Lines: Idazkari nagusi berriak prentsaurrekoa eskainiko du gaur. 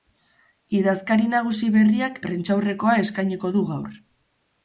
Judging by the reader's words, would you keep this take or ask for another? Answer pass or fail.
pass